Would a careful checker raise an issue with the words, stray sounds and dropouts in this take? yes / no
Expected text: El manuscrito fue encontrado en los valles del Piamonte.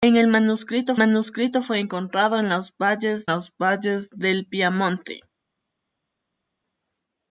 yes